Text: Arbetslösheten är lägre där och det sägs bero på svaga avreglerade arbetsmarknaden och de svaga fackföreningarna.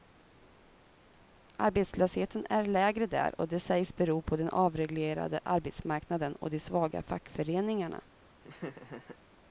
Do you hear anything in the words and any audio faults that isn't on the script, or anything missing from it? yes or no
yes